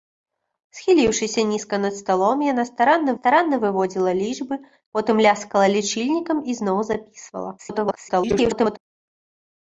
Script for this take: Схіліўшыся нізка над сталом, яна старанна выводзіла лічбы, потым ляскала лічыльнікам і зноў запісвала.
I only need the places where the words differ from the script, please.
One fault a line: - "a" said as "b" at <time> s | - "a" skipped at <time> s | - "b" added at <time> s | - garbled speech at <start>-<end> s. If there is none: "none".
- "старанна" added at 3.2 s
- garbled speech at 7.6-8.8 s